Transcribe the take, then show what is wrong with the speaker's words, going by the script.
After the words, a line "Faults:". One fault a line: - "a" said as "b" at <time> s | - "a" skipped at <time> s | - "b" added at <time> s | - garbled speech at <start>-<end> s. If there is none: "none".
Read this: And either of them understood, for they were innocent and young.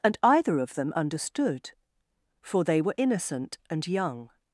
And either of them understood, for they were innocent and young.
Faults:
none